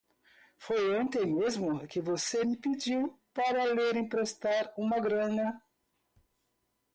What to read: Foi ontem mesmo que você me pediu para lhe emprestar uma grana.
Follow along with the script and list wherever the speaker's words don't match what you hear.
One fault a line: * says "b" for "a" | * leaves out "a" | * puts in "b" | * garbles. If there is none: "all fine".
all fine